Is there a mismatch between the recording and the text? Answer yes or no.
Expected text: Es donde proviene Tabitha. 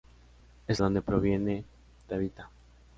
no